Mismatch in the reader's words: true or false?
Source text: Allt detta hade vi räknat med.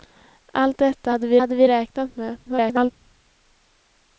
true